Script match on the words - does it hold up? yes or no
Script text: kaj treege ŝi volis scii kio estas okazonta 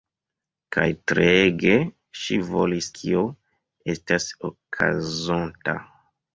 no